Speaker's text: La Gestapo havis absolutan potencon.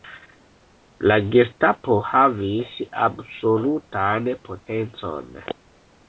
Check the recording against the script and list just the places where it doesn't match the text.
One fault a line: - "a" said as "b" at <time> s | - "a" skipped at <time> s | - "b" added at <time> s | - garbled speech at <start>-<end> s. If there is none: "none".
none